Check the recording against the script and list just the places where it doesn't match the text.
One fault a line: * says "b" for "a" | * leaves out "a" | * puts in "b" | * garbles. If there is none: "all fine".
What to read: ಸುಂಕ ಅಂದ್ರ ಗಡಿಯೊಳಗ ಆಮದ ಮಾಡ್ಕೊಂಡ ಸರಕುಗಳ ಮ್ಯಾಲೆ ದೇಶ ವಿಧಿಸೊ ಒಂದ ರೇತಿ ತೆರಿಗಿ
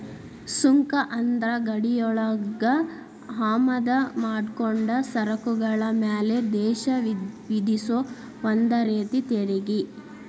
all fine